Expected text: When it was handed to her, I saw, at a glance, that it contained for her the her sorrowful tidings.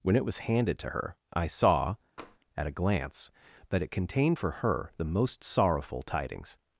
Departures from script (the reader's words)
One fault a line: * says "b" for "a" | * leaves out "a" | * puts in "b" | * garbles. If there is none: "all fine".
* says "most" for "her"